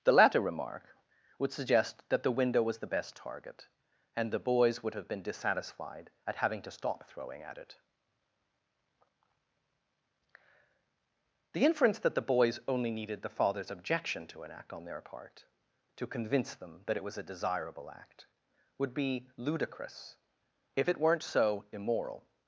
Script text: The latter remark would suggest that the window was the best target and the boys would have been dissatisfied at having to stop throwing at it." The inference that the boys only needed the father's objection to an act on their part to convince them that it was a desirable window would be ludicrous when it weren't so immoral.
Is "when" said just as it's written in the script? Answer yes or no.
no